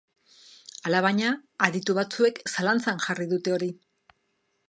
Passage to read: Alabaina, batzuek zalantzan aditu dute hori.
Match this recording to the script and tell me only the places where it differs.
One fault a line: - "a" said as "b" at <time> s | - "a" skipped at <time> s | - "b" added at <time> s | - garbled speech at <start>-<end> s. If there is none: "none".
- "aditu" added at 1.7 s
- "aditu" said as "jarri" at 3.1 s